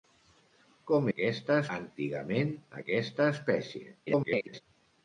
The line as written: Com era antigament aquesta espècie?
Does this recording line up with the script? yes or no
no